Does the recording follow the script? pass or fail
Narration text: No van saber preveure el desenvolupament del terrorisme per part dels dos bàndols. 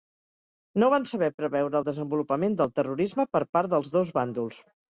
pass